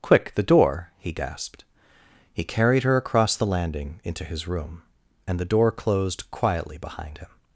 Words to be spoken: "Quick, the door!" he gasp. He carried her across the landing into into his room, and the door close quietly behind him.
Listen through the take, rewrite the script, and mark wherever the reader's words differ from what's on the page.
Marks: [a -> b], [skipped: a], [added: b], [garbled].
"Quick, the door!" he [gasp. -> gasped] He carried her across the landing into [skipped: into] his room, and the door [close -> closed] quietly behind him.